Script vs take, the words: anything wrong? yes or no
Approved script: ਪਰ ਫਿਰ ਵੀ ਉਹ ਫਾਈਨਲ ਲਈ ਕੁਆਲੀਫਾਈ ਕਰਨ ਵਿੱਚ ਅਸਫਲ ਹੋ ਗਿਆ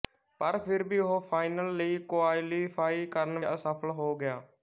yes